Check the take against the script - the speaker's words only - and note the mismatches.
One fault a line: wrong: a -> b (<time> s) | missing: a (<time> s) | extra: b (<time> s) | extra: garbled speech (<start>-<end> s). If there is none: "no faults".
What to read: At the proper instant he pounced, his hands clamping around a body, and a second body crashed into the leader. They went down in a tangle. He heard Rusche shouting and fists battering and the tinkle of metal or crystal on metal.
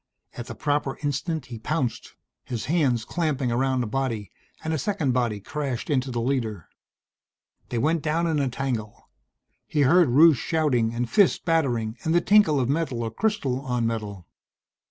no faults